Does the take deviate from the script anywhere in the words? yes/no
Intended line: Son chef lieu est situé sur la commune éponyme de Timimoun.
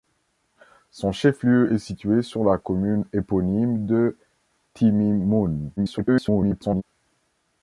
yes